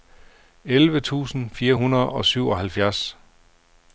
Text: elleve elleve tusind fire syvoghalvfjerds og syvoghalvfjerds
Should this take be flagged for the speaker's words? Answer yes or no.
yes